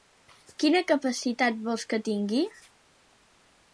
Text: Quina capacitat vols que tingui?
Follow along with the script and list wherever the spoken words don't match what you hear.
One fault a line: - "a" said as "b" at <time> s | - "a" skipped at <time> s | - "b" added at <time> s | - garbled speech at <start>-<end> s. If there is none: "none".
none